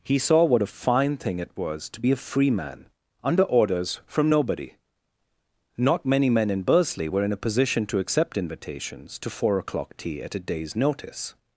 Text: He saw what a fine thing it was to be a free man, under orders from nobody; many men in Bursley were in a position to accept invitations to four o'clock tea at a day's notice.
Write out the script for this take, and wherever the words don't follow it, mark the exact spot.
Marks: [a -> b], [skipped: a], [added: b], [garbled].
He saw what a fine thing it was to be a free man, under orders from nobody; [added: not] many men in Bursley were in a position to accept invitations to four o'clock tea at a day's notice.